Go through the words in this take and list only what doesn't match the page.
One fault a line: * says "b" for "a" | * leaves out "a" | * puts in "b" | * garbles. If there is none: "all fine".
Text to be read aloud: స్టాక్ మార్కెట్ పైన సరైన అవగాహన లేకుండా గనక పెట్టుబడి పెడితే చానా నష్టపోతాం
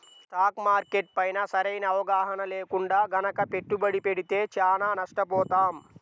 all fine